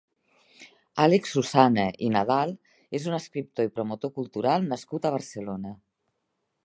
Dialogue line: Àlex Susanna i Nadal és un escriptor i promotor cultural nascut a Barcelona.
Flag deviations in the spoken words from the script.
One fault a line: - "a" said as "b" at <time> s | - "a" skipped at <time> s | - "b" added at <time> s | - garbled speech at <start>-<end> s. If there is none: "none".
none